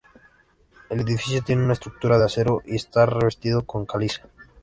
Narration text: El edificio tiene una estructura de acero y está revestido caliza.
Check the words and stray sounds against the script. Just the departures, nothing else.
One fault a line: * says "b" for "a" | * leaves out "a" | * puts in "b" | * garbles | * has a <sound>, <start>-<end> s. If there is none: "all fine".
* puts in "con"